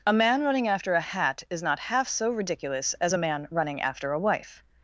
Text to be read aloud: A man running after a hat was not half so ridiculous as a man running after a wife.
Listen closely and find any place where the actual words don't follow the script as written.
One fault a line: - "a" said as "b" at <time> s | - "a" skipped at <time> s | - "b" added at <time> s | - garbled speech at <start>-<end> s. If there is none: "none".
- "was" said as "is" at 1.5 s